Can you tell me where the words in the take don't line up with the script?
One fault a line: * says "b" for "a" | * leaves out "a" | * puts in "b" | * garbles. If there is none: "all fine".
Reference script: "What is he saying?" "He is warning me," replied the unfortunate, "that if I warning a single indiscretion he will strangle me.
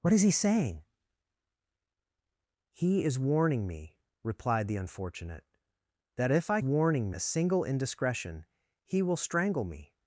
all fine